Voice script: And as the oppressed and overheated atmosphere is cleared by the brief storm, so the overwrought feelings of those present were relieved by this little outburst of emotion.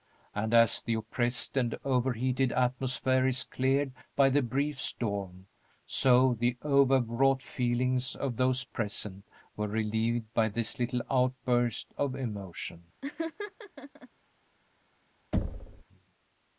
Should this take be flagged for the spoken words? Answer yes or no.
no